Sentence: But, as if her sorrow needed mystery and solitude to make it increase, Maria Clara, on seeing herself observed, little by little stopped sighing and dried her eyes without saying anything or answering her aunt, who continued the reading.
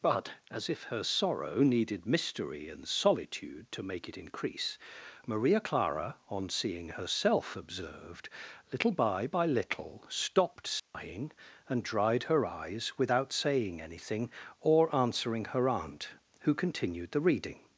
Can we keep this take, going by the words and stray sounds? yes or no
no